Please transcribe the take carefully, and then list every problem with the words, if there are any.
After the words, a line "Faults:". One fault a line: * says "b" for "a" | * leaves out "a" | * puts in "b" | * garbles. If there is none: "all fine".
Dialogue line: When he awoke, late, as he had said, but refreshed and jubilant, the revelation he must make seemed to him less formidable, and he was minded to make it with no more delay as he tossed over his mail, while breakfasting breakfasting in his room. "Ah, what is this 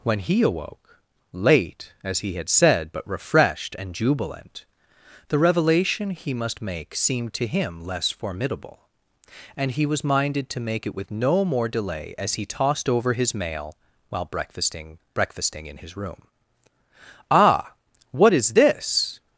When he awoke, late, as he had said, but refreshed and jubilant, the revelation he must make seemed to him less formidable, and he was minded to make it with no more delay as he tossed over his mail, while breakfasting breakfasting in his room. "Ah, what is this
Faults:
all fine